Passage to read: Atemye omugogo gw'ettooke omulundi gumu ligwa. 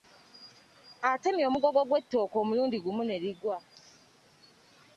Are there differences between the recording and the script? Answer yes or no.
yes